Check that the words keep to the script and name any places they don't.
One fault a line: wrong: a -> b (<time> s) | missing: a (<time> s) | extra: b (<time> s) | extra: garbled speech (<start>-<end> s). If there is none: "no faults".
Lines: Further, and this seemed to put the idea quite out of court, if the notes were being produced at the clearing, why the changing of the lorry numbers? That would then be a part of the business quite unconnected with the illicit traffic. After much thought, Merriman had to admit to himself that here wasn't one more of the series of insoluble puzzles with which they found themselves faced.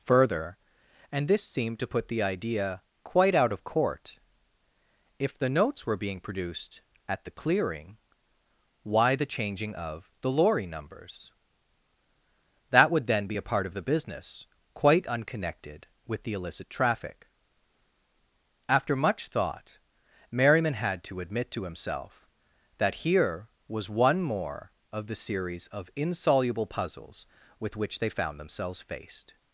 wrong: wasn't -> was (23.7 s)